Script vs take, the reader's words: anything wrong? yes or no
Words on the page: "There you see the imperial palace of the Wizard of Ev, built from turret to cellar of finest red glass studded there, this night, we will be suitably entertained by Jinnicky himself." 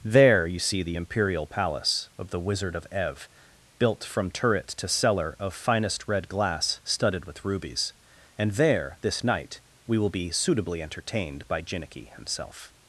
yes